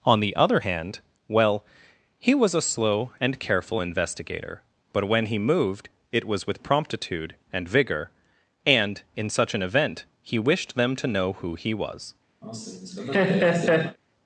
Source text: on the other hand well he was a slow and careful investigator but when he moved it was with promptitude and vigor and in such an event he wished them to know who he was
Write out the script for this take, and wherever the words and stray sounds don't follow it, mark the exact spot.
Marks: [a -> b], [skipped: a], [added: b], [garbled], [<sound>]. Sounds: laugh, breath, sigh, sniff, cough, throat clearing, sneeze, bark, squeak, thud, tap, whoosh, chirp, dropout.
on the other hand well he was a slow and careful investigator but when he moved it was with promptitude and vigor and in such an event he wished them to know who he was [laugh]